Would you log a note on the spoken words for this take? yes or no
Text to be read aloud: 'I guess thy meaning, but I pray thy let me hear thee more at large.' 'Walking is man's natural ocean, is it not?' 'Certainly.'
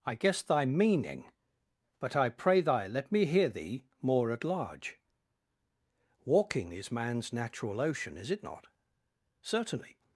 no